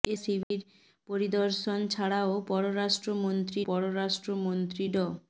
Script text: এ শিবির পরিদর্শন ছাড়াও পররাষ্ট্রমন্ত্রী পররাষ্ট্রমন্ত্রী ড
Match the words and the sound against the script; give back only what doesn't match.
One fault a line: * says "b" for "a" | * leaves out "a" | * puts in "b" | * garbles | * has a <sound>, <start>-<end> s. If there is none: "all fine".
* has a dropout, 0.4-0.5 s